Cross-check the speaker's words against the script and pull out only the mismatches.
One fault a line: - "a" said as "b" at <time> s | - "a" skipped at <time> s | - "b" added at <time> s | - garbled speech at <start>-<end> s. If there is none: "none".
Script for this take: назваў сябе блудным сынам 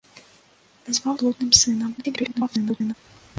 - "сябе" skipped at 1.1 s
- garbled speech at 2.0-2.9 s